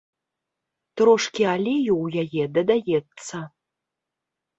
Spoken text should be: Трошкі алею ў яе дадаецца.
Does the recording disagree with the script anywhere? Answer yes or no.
no